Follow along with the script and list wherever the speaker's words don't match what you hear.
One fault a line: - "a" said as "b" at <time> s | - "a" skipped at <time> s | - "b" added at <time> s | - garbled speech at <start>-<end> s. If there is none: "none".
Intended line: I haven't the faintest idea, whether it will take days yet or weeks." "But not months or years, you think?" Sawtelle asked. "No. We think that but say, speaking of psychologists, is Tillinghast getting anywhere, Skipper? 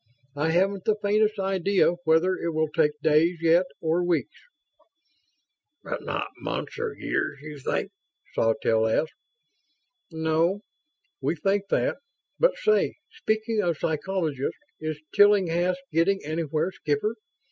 none